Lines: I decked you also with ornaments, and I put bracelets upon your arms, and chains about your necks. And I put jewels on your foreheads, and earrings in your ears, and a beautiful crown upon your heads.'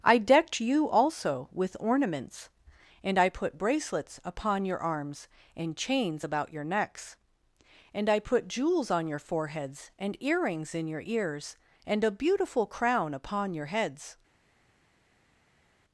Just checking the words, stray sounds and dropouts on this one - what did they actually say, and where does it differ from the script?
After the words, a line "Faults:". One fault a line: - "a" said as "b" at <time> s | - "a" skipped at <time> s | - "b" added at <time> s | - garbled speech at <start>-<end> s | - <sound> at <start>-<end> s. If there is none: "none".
I decked you also with ornaments, and I put bracelets upon your arms, and chains about your necks. And I put jewels on your foreheads, and earrings in your ears, and a beautiful crown upon your heads.'
Faults:
none